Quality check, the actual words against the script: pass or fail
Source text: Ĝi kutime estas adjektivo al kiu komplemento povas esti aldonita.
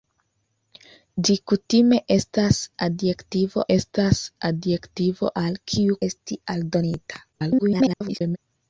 fail